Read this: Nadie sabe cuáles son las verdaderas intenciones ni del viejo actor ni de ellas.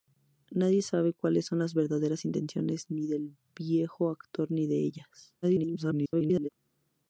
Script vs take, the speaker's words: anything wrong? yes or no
yes